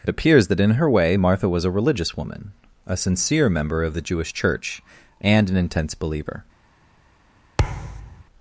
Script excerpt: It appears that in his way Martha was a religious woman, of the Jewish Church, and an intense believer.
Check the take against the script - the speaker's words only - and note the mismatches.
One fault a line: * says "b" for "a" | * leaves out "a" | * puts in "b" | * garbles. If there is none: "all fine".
* says "her" for "his"
* puts in "a sincere member"